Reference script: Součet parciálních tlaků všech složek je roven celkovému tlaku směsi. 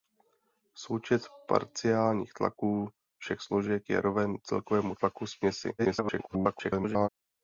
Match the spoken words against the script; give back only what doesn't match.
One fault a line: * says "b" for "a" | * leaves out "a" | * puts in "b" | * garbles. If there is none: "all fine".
* garbles